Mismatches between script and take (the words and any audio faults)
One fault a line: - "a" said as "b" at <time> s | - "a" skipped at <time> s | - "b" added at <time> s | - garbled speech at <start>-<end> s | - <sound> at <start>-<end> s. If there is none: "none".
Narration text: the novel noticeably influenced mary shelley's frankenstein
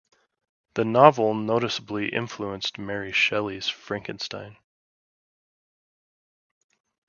none